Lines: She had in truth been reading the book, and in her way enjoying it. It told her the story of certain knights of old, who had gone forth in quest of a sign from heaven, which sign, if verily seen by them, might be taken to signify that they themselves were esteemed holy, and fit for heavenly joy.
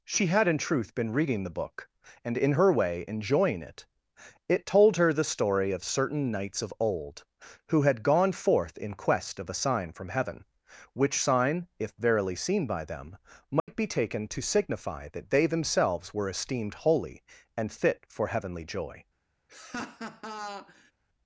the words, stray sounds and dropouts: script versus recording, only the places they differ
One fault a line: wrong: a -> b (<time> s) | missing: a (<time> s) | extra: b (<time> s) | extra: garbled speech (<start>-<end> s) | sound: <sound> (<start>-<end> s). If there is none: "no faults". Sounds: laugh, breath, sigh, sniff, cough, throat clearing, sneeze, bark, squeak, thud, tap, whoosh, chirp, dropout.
sound: dropout (13.6-13.7 s)
sound: laugh (19.5-20.9 s)